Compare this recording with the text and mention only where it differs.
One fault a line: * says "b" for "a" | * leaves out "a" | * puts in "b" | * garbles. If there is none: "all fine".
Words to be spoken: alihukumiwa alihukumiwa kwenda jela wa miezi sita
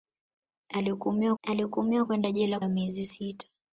all fine